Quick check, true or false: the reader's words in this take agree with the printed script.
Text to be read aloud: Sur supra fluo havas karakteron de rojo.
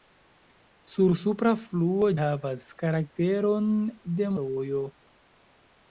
true